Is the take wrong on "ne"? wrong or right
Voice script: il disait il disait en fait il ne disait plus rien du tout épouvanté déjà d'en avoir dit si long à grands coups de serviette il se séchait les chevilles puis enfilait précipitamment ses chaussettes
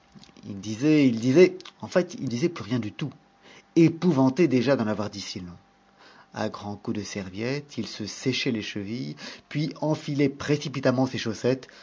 wrong